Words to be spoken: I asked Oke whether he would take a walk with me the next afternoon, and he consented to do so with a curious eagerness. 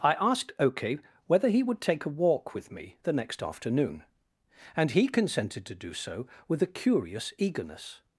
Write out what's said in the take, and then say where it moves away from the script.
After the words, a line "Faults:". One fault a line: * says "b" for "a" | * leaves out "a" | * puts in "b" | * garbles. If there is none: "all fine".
I asked Oke whether he would take a walk with me the next afternoon, and he consented to do so with a curious eagerness.
Faults:
all fine